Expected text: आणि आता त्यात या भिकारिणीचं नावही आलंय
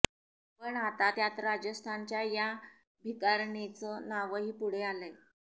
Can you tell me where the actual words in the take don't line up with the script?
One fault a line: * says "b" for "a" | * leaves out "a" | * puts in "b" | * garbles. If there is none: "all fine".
* says "पण" for "आणि"
* puts in "राजस्थानच्या"
* puts in "पुढे"